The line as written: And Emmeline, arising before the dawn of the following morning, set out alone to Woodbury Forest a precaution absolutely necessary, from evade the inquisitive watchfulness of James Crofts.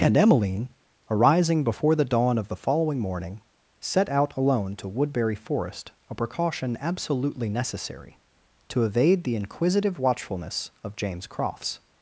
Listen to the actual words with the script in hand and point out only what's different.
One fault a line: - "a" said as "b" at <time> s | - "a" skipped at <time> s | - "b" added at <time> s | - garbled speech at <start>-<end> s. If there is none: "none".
- "from" said as "to" at 8.7 s